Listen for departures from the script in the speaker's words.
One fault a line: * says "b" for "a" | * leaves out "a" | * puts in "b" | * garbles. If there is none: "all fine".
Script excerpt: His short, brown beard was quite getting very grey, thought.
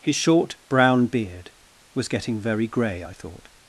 * leaves out "quite"
* puts in "I"